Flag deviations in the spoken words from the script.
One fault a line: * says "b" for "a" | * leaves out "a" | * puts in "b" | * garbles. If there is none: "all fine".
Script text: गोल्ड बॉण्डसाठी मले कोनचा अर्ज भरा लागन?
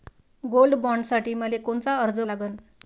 * leaves out "भरा"